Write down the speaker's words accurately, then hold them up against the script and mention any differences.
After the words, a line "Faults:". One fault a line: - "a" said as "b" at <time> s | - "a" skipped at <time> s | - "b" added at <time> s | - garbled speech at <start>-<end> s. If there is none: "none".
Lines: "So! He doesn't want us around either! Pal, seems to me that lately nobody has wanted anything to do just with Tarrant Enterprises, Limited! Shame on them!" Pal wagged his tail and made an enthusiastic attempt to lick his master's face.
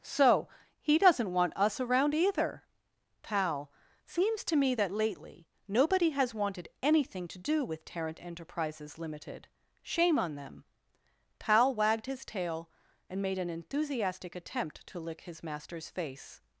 "So! He doesn't want us around either! Pal, seems to me that lately nobody has wanted anything to do with Tarrant Enterprises, Limited! Shame on them!" Pal wagged his tail and made an enthusiastic attempt to lick his master's face.
Faults:
- "just" skipped at 7.6 s